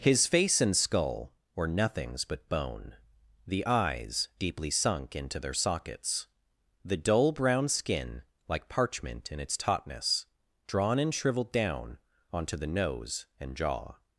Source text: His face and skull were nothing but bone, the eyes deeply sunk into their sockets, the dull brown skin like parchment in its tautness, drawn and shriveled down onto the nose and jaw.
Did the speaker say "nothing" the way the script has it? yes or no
no